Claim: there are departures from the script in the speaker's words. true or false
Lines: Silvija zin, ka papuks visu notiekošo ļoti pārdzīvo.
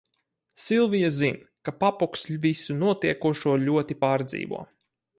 false